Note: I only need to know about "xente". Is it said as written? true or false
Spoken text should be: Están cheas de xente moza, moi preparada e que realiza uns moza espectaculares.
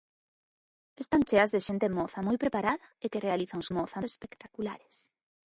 true